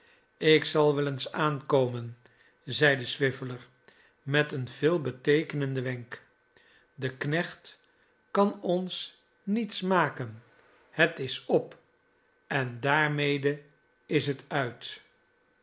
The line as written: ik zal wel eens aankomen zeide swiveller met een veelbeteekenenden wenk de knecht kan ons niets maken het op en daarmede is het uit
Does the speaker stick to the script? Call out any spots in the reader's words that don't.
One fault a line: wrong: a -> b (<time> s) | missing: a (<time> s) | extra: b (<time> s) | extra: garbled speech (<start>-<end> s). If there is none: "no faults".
extra: is (11.2 s)